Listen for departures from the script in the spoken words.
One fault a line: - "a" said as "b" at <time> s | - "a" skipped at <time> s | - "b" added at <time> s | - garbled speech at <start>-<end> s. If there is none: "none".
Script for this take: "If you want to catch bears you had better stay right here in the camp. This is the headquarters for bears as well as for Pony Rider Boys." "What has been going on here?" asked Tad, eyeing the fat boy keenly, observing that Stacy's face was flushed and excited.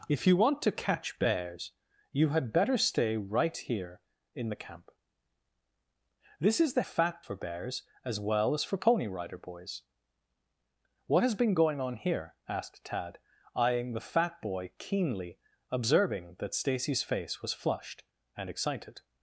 - "headquarters" said as "fat" at 6.8 s